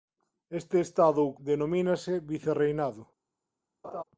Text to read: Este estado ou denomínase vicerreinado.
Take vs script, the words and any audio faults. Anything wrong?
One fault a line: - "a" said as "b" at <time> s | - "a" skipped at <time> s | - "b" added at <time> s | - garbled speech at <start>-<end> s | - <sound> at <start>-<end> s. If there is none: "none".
- laugh at 3.8-4.0 s